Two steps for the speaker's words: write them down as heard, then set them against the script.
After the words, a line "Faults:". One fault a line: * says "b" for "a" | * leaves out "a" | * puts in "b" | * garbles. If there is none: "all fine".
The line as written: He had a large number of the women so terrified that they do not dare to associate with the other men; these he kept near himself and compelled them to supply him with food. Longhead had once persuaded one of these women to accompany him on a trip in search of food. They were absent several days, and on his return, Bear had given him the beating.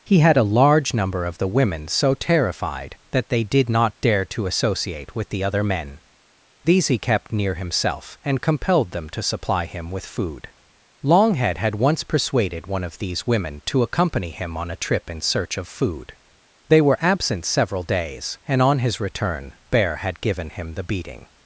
He had a large number of the women so terrified that they did not dare to associate with the other men; these he kept near himself and compelled them to supply him with food. Longhead had once persuaded one of these women to accompany him on a trip in search of food. They were absent several days, and on his return, Bear had given him the beating.
Faults:
* says "did" for "do"